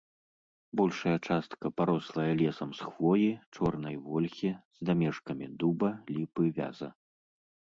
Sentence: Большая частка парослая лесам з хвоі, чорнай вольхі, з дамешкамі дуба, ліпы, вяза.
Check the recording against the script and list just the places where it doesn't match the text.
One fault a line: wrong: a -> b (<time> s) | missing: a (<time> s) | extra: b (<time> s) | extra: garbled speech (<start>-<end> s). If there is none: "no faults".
no faults